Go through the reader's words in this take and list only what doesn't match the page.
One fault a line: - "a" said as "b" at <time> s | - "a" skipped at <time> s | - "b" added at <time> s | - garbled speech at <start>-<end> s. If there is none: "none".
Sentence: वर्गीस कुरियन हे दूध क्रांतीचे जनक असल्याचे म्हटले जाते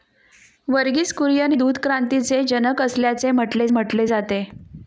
- "हे" skipped at 1.5 s
- "म्हटले" added at 3.7 s